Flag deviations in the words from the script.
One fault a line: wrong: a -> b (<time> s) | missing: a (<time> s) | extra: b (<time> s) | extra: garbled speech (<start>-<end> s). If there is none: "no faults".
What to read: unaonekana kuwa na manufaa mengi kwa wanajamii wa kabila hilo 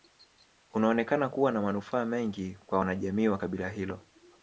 no faults